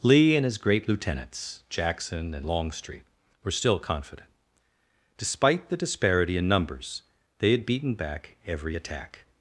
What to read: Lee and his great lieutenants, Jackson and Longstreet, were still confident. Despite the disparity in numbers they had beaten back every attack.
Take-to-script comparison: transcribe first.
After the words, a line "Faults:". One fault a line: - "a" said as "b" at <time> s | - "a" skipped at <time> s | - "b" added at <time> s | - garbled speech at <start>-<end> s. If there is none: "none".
Lee and his great lieutenants, Jackson and Longstreet, were still confident. Despite the disparity in numbers they had beaten back every attack.
Faults:
none